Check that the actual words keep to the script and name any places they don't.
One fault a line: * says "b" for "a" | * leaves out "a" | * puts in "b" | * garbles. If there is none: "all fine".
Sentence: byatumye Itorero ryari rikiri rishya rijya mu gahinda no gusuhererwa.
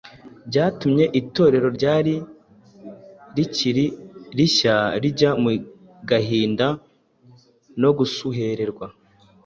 all fine